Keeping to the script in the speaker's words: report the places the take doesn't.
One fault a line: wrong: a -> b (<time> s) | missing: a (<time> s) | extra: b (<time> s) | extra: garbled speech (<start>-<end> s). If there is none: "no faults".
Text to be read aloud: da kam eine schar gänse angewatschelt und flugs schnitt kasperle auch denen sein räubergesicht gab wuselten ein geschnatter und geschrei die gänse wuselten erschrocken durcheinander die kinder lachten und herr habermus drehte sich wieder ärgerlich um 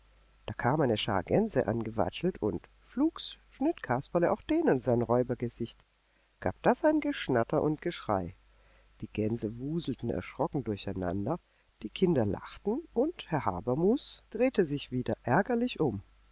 wrong: wuselten -> das (6.6 s)